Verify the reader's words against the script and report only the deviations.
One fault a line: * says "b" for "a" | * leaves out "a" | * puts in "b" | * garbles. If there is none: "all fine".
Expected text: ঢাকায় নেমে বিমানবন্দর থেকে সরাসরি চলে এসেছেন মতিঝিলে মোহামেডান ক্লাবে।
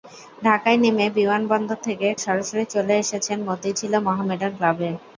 all fine